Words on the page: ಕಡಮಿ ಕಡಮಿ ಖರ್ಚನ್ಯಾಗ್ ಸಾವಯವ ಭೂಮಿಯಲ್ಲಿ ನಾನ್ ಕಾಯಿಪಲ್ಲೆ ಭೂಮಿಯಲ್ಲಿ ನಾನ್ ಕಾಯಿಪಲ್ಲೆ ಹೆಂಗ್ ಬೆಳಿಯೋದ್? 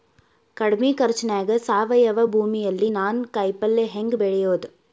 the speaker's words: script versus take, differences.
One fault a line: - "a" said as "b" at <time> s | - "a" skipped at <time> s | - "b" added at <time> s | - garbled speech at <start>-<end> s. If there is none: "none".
- "ಕಡಮಿ" skipped at 0.9 s
- "ಭೂಮಿಯಲ್ಲಿ ನಾನ್ ಕಾಯಿಪಲ್ಲೆ" skipped at 3.9 s